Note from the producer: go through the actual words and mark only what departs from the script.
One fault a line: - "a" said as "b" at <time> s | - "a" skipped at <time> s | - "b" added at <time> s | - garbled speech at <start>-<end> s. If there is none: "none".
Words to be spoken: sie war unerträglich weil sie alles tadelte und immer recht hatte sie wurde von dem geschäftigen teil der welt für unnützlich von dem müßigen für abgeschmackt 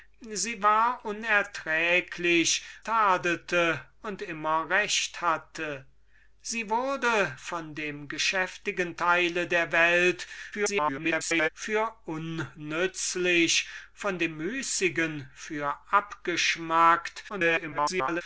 - "weil sie alles" skipped at 2.6 s
- garbled speech at 10.5-11.5 s
- garbled speech at 17.3-18.2 s